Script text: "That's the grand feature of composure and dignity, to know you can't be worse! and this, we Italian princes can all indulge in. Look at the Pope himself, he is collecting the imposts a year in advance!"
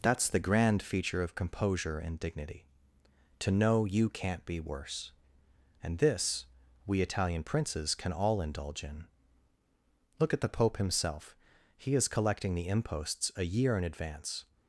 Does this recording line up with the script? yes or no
yes